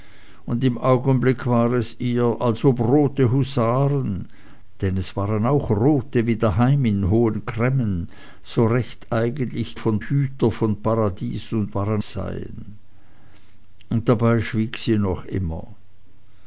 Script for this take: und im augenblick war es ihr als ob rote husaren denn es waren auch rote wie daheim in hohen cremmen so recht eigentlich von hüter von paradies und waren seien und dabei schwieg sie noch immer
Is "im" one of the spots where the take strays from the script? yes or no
no